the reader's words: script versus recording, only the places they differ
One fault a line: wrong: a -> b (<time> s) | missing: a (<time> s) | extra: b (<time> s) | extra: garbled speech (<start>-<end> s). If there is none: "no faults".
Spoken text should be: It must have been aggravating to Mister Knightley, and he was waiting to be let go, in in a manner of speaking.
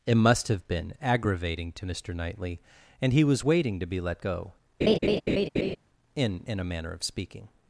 no faults